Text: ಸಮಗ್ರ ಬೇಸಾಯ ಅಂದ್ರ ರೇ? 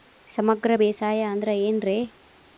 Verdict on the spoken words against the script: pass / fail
fail